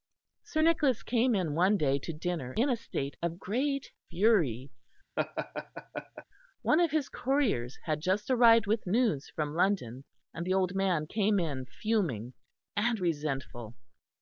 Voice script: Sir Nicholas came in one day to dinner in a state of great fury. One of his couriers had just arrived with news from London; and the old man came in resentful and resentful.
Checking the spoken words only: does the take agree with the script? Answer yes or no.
no